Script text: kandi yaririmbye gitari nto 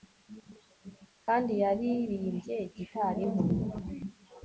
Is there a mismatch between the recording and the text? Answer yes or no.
no